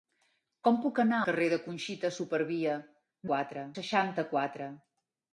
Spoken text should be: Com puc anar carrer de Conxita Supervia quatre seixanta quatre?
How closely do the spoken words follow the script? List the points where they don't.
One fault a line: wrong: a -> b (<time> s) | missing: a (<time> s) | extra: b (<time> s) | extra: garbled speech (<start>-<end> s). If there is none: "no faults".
no faults